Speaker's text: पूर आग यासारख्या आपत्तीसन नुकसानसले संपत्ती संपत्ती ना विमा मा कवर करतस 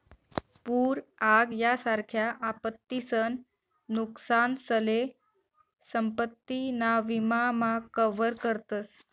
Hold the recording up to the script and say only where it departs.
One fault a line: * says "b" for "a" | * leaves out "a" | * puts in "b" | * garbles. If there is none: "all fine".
* leaves out "संपत्ती"